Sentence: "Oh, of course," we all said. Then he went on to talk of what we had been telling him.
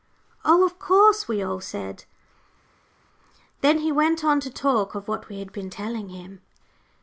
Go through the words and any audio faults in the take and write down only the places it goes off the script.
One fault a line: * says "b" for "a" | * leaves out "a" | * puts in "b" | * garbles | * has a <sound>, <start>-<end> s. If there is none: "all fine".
all fine